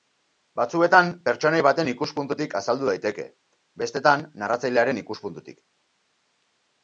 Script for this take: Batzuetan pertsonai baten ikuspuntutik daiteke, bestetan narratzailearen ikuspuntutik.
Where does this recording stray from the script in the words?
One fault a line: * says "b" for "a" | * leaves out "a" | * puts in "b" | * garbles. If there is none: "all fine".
* puts in "azaldu"